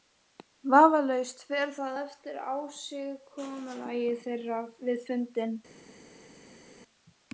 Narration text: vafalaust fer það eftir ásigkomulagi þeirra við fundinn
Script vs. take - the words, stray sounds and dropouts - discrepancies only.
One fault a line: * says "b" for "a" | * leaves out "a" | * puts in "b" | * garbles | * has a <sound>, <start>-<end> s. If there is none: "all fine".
all fine